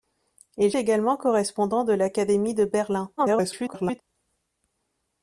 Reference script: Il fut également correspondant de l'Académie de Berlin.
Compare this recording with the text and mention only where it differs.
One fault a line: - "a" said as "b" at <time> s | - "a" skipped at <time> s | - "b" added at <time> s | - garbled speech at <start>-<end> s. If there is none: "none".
- "fut" skipped at 0.7 s
- garbled speech at 3.2-4.0 s